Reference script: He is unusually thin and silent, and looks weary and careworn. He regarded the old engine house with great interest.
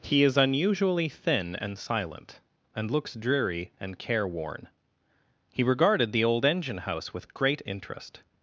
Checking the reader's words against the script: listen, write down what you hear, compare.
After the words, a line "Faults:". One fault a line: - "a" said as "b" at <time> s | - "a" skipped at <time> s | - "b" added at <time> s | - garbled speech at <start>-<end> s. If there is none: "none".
He is unusually thin and silent, and looks dreary and careworn. He regarded the old engine house with great interest.
Faults:
- "weary" said as "dreary" at 3.1 s